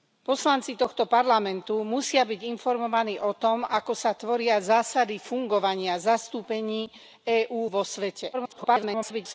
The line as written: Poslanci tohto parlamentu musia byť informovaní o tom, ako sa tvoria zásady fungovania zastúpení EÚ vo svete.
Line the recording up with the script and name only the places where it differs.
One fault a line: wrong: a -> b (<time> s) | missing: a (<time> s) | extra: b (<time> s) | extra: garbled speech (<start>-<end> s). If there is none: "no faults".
extra: garbled speech (8.3-9.3 s)